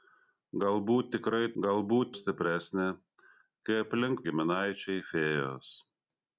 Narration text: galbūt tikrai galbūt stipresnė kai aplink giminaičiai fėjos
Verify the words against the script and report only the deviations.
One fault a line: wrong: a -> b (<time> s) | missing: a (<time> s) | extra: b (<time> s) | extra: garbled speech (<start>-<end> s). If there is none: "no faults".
no faults